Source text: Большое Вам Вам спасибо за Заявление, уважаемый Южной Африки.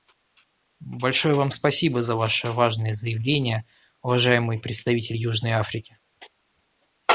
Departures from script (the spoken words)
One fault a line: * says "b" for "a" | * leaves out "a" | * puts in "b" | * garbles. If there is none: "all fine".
* leaves out "Вам"
* puts in "Ваше важное"
* puts in "представитель"